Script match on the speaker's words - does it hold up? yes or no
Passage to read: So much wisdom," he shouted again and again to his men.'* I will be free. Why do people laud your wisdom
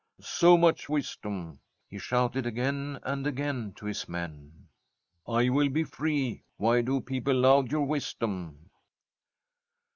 yes